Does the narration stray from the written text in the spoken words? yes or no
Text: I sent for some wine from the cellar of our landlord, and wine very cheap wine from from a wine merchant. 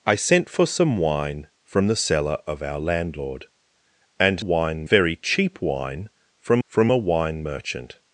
no